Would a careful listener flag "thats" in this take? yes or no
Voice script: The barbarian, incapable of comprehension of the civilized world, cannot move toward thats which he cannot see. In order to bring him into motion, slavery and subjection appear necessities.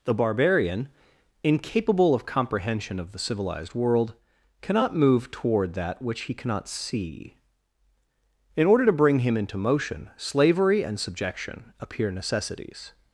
yes